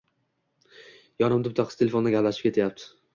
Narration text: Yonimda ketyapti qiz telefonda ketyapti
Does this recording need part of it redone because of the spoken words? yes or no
yes